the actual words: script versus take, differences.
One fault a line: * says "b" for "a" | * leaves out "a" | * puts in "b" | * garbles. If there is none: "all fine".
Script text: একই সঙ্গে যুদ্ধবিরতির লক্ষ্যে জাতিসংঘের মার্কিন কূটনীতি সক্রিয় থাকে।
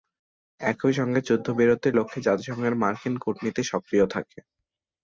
all fine